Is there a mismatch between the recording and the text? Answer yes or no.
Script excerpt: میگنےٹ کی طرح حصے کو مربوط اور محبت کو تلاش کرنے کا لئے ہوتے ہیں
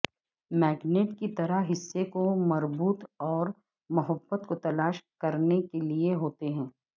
yes